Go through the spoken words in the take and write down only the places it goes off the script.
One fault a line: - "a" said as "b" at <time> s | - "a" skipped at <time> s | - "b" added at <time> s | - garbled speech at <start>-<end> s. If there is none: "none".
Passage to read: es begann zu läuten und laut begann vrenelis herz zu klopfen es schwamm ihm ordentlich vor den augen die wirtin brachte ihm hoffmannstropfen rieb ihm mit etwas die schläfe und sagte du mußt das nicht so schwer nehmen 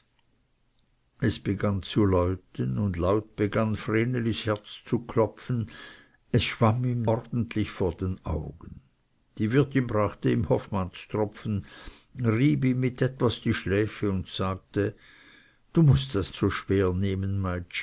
- "nicht" skipped at 16.3 s